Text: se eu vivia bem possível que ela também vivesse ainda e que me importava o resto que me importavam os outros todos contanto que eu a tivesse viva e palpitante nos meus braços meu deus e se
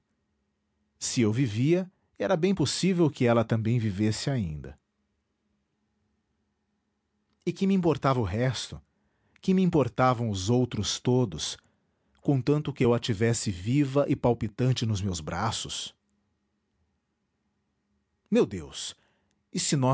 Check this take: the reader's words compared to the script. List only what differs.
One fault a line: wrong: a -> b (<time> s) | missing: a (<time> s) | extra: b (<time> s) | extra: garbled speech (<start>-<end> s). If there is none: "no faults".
extra: era (2.2 s)